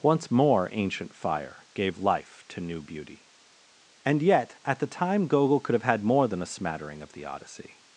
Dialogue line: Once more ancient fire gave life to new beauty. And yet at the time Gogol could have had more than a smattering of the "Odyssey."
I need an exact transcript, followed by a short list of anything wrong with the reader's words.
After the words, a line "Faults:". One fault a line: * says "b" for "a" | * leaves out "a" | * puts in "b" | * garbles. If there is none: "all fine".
Once more ancient fire gave life to new beauty. And yet at the time Gogol could have had more than a smattering of the "Odyssey."
Faults:
all fine